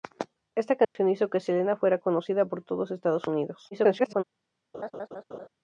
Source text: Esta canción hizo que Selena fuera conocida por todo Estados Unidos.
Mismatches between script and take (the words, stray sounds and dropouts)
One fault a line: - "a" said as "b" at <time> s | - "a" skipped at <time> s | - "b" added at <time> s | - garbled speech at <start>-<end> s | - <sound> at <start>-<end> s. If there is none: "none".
- dropout at 0.8-1.0 s
- garbled speech at 3.7-4.2 s
- laugh at 4.7-5.5 s